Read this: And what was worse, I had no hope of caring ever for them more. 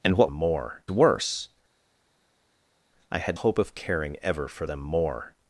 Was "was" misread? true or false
true